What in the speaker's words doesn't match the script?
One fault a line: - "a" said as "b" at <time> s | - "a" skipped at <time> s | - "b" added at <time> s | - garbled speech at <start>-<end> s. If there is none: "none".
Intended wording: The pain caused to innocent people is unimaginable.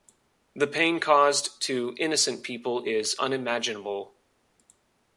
none